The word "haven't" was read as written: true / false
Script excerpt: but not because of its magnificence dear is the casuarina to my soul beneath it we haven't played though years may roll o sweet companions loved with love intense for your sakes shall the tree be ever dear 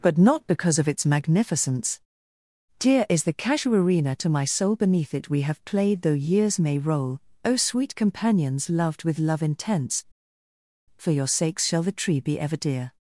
false